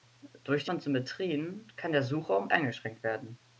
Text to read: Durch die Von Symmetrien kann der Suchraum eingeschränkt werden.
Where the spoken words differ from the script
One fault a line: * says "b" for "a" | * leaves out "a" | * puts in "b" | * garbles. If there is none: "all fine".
all fine